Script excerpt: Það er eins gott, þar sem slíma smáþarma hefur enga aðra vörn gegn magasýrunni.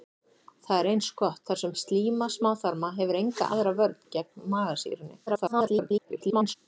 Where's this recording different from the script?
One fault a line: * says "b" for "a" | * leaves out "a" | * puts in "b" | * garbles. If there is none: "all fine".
* garbles